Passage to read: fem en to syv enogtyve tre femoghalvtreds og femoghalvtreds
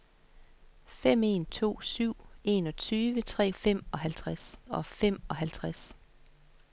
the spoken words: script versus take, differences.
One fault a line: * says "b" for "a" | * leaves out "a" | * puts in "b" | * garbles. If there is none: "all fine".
all fine